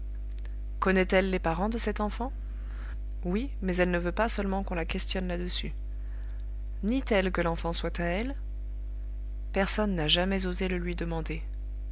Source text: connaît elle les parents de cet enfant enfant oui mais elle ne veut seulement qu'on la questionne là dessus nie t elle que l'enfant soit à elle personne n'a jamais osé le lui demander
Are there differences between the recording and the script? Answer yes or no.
yes